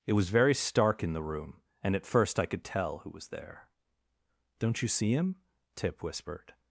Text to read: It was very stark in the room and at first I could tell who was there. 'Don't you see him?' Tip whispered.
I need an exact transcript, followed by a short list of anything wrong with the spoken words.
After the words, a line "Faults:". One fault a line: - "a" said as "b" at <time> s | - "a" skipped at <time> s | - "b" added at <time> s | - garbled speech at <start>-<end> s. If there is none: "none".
It was very stark in the room and at first I could tell who was there. 'Don't you see him?' Tip whispered.
Faults:
none